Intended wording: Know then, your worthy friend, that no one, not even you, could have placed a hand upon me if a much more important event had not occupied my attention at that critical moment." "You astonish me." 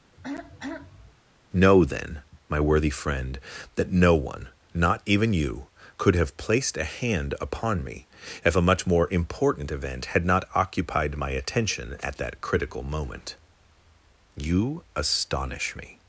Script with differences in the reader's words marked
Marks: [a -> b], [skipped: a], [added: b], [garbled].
Know then, [your -> my] worthy friend, that no one, not even you, could have placed a hand upon me if a much more important event had not occupied my attention at that critical moment." "You astonish me."